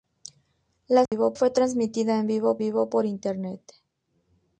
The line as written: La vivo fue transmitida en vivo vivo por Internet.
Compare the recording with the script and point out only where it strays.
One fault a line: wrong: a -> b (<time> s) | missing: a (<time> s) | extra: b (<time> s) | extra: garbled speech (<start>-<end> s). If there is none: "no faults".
no faults